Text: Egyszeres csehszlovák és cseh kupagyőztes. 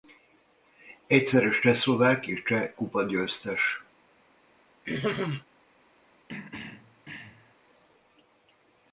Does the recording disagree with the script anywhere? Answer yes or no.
no